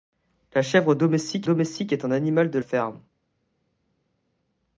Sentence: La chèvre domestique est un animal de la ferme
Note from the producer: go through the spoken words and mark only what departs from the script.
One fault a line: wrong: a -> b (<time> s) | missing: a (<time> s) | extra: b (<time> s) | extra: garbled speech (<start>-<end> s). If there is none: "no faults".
extra: domestique (1.4 s)
missing: la (2.6 s)